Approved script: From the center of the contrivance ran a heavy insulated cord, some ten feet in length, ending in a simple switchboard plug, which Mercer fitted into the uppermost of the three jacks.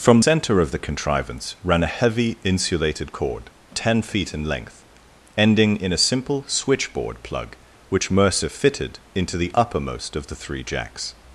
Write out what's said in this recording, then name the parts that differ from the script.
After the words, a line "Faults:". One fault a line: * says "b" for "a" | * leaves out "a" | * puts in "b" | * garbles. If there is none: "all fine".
From center of the contrivance ran a heavy insulated cord, ten feet in length, ending in a simple switchboard plug, which Mercer fitted into the uppermost of the three jacks.
Faults:
* leaves out "the"
* leaves out "some"